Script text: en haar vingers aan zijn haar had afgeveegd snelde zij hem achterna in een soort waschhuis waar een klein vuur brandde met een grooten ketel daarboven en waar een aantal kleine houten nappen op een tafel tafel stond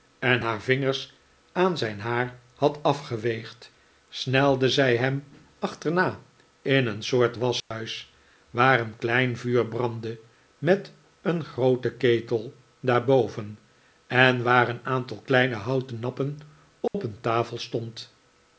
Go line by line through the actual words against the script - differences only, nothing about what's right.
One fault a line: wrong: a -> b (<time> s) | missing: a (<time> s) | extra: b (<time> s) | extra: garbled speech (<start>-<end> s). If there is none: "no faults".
missing: tafel (17.6 s)